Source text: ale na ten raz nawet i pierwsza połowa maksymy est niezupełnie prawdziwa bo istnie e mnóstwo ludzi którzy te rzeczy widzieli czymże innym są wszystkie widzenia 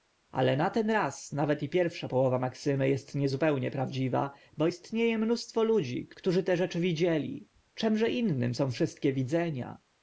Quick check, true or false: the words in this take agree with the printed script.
true